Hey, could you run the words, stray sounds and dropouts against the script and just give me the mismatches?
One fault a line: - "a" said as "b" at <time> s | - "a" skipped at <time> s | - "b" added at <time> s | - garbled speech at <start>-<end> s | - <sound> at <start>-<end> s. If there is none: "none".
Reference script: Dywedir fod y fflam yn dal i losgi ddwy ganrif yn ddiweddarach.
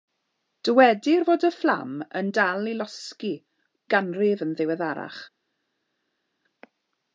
- "ddwy" skipped at 3.3 s